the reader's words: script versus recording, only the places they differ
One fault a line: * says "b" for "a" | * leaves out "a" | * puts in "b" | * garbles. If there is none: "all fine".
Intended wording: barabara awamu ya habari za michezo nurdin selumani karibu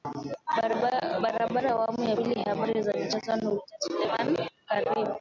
* puts in "pili"